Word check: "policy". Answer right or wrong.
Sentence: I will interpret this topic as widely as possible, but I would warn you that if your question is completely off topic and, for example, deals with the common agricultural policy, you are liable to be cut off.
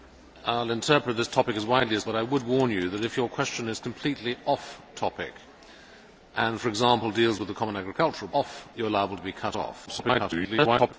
wrong